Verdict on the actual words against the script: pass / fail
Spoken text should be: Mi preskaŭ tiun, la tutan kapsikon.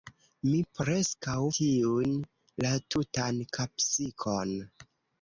pass